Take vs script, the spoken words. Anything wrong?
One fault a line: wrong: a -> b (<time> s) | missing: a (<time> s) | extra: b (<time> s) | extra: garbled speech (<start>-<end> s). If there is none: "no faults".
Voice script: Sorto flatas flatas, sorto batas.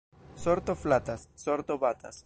missing: flatas (1.3 s)